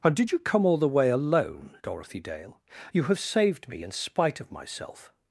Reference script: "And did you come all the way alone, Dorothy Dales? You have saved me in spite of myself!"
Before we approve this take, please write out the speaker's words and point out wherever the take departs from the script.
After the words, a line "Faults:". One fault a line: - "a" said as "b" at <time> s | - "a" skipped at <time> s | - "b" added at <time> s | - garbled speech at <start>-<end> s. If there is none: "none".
"And did you come all the way alone, Dorothy Dale? You have saved me in spite of myself!"
Faults:
- "Dales" said as "Dale" at 2.2 s